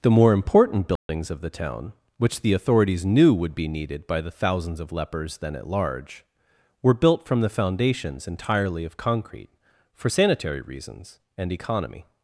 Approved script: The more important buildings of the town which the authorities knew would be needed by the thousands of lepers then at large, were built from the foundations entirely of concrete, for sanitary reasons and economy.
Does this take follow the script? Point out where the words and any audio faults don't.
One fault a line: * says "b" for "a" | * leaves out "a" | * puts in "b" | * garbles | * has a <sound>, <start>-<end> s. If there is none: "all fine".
* has a dropout, 1.0-1.1 s